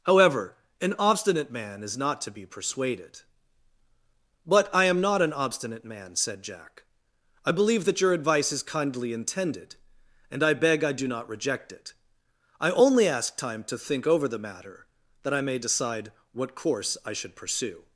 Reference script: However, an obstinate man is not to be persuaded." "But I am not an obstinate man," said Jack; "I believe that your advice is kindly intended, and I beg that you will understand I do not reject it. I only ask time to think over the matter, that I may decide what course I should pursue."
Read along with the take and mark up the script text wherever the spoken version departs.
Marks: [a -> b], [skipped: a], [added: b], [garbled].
However, an obstinate man is not to be persuaded." "But I am not an obstinate man," said Jack; "I believe that your advice is kindly intended, and I beg [skipped: that you will understand] I do not reject it. I only ask time to think over the matter, that I may decide what course I should pursue."